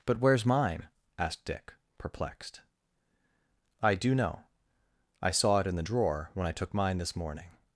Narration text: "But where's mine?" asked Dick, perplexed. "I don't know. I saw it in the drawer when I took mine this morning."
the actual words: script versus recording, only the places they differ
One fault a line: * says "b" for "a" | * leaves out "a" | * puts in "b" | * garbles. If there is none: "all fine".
* says "do" for "don't"